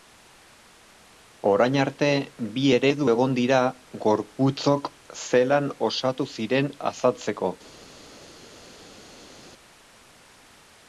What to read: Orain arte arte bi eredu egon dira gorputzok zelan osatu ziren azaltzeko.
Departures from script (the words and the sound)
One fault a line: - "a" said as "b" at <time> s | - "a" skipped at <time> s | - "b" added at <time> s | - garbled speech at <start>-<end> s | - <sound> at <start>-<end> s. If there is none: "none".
- "arte" skipped at 2.1 s